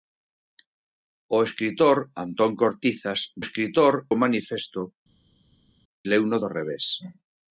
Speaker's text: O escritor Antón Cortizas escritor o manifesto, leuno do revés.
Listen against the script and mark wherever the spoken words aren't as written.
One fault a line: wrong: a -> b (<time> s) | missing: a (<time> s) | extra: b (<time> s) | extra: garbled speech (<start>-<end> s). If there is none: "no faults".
no faults